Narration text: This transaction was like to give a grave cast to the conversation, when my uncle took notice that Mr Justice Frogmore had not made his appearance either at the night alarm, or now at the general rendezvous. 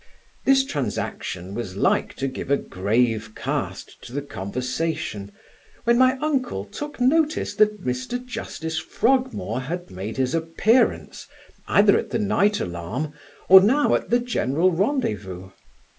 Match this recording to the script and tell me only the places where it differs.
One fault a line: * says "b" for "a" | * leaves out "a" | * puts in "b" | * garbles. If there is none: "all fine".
* leaves out "not"